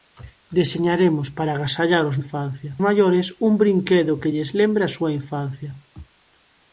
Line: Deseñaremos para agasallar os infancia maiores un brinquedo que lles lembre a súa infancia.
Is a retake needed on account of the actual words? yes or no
no